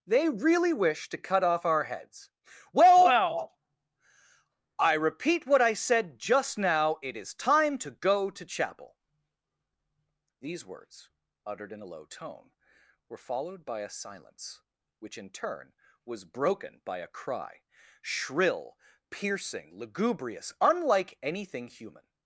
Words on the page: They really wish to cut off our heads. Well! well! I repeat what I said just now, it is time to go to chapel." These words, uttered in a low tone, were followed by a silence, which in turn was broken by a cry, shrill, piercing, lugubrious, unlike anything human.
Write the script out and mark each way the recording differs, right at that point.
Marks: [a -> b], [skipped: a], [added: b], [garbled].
They really wish to cut off our heads. Well! well! I repeat what I said just now, it is time to go to chapel." These words, uttered in a low tone, were followed by a silence, which in turn was broken by a cry, shrill, piercing, lugubrious, unlike anything human.